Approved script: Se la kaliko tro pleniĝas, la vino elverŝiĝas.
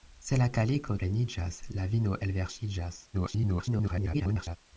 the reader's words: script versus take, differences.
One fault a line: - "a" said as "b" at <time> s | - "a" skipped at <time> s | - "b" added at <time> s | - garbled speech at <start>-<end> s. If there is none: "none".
- "tro" skipped at 0.9 s
- garbled speech at 3.1-4.6 s